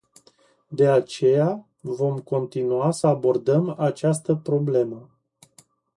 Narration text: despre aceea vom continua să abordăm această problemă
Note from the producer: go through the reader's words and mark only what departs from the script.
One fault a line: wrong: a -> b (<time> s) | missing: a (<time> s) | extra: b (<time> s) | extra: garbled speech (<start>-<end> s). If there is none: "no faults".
wrong: despre -> de (0.7 s)